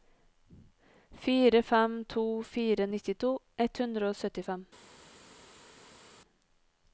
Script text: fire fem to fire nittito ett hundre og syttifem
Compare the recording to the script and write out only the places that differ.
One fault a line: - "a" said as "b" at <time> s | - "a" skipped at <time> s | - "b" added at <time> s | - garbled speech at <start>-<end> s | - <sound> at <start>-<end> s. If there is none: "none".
none